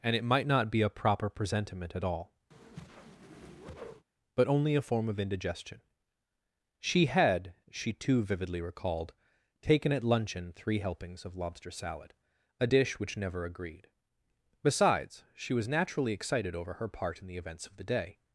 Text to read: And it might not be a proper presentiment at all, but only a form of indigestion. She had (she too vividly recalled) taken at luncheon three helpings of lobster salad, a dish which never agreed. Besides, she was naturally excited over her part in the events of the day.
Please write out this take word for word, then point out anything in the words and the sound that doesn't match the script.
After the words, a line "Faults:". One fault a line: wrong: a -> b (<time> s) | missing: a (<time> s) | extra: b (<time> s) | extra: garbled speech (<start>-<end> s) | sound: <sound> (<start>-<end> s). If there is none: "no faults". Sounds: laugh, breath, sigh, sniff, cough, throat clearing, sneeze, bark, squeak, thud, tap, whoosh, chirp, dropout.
And it might not be a proper presentiment at all, but only a form of indigestion. She had (she too vividly recalled) taken at luncheon three helpings of lobster salad, a dish which never agreed. Besides, she was naturally excited over her part in the events of the day.
Faults:
sound: whoosh (2.5-4.1 s)